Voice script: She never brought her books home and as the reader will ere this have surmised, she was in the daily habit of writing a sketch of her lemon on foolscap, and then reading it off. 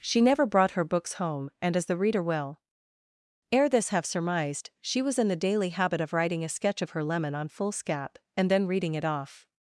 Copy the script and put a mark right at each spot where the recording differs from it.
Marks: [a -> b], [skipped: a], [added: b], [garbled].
She never brought her books home and as the reader will ere this have surmised, she was in the daily habit of writing a sketch of her lemon on foolscap, and then reading it off.